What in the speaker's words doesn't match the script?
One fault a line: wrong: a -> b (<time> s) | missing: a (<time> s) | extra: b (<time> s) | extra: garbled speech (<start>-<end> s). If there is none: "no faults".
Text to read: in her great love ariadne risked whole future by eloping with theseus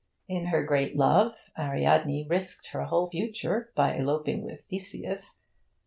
extra: her (2.7 s)